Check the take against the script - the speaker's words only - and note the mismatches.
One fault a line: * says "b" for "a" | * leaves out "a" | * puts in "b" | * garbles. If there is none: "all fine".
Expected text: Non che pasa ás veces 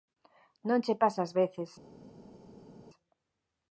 all fine